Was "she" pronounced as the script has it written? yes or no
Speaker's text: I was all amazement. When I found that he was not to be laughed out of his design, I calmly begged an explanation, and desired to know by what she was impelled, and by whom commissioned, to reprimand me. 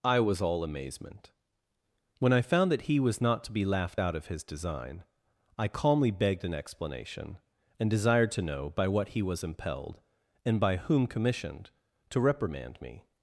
no